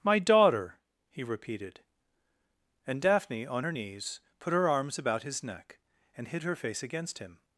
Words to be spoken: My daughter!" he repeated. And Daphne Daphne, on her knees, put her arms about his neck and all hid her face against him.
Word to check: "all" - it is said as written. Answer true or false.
false